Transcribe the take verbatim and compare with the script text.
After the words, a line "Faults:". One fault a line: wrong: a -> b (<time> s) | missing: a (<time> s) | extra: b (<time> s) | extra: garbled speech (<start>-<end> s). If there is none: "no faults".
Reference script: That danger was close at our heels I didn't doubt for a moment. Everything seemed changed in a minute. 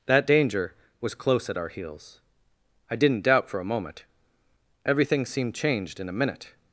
That danger was close at our heels I didn't doubt for a moment. Everything seemed changed in a minute.
Faults:
no faults